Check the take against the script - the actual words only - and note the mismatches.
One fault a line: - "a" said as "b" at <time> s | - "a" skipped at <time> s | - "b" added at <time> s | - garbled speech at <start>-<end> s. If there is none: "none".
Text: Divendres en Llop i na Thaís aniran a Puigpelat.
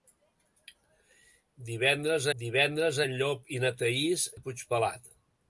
- "divendres" added at 2.4 s
- "aniran" skipped at 4.3 s